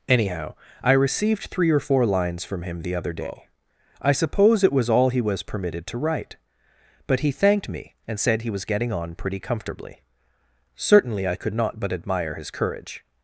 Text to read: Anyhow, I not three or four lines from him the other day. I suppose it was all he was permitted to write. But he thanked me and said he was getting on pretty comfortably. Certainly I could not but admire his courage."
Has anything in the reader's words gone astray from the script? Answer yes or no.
yes